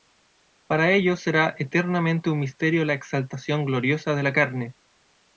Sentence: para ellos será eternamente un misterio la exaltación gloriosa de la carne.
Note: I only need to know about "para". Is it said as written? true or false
true